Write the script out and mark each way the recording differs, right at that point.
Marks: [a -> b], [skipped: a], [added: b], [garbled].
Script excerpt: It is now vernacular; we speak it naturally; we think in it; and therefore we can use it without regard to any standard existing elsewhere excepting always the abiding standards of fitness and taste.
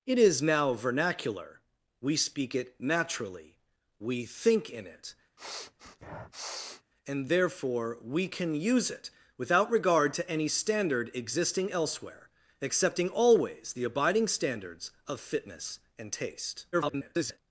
It is now vernacular; we speak it naturally; we think in it; and therefore we can use it without regard to any standard existing elsewhere excepting always the abiding standards of fitness and taste. [garbled]